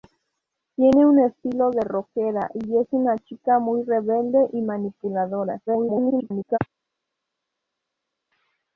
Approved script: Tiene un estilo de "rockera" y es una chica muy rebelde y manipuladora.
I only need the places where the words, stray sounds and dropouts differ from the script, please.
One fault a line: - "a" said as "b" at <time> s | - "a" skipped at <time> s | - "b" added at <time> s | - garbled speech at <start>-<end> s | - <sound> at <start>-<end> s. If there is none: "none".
- garbled speech at 5.7-6.6 s